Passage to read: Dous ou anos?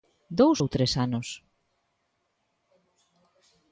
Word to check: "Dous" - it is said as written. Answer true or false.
true